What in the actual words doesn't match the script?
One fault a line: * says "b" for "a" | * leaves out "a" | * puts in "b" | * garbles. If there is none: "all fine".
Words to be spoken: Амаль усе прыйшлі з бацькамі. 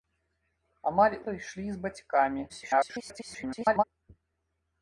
* leaves out "усе"
* garbles